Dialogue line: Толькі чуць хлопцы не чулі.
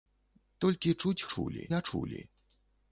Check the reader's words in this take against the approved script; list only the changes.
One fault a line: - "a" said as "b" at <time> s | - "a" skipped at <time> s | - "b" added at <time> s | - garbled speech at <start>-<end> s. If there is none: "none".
- "хлопцы" said as "чулі" at 1.3 s